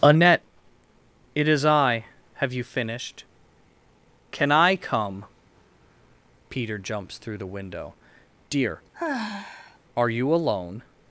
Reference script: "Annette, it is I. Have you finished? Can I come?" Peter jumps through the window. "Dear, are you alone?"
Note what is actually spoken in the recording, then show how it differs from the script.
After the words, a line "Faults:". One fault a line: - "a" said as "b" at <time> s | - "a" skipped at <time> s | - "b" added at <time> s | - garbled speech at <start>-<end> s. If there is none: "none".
"Annette, it is I. Have you finished? Can I come?" Peter jumps through the window. "Dear, are you alone?"
Faults:
none